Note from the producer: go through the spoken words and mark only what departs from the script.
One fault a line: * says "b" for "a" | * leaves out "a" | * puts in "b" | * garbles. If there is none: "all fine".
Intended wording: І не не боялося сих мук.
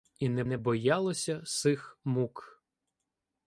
all fine